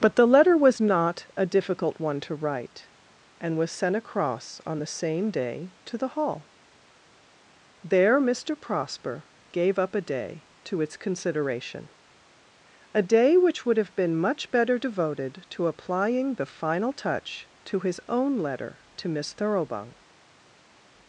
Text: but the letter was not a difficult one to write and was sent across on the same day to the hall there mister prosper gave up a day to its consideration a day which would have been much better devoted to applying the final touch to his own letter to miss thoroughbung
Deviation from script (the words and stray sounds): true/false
false